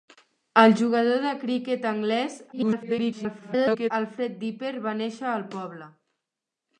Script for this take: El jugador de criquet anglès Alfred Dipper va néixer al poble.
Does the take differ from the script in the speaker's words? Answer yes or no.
yes